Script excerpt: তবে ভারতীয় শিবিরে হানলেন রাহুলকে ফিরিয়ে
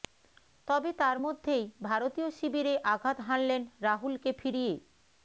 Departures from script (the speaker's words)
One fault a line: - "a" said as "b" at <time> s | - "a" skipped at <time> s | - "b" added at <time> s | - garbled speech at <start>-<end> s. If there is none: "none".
- "তার মধ্যেই" added at 1.0 s
- "আঘাত" added at 2.9 s